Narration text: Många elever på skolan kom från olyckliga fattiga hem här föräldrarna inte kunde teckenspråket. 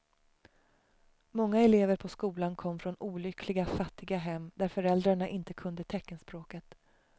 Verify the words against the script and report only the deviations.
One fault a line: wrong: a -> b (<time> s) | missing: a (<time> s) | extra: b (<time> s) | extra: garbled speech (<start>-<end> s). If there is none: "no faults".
wrong: här -> där (4.5 s)